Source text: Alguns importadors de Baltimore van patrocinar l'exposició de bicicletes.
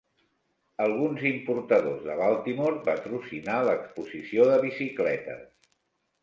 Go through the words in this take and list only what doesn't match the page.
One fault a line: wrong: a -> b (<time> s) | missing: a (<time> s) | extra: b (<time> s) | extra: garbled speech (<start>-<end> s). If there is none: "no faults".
missing: van (2.8 s)